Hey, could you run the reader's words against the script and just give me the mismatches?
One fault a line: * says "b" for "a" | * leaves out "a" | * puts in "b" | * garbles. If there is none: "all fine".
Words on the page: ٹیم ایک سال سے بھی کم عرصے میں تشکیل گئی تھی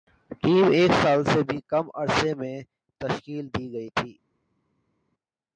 * puts in "دی"